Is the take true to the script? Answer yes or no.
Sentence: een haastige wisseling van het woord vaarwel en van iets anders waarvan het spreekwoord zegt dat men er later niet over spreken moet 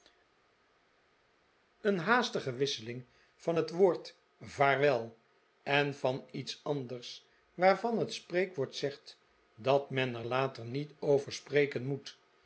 yes